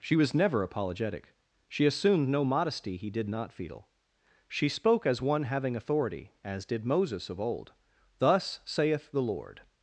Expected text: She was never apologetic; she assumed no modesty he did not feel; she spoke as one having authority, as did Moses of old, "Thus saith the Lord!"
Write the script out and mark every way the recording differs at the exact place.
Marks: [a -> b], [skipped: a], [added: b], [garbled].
She was never apologetic; she assumed no modesty he did not feel; she spoke as one having authority, as did Moses of old, "Thus saith the Lord!"